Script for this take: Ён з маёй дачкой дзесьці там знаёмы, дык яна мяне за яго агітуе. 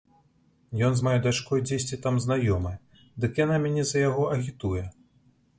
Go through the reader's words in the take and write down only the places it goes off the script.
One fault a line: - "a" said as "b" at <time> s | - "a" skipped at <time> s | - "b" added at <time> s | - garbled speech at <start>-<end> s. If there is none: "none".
none